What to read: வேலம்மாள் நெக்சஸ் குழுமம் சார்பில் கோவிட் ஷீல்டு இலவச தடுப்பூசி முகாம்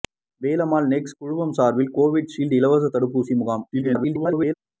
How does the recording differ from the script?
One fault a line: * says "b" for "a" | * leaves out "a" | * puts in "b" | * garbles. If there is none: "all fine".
* garbles